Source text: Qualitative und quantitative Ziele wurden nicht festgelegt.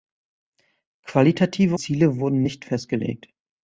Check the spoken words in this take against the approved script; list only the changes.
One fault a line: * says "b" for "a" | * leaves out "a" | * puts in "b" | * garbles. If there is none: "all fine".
* leaves out "und quantitative"